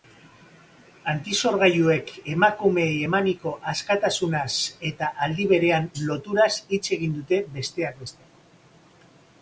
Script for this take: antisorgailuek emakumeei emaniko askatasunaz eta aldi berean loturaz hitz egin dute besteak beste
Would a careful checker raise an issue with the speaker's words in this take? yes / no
no